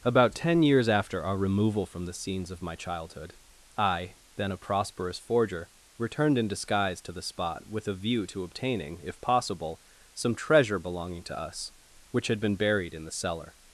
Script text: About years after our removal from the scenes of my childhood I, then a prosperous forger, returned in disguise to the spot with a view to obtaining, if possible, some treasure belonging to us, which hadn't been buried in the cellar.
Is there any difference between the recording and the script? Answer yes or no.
yes